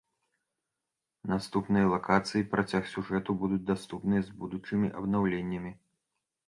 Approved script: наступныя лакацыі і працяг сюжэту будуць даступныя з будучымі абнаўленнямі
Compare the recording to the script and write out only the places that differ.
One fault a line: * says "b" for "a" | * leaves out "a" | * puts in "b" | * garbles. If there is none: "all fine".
all fine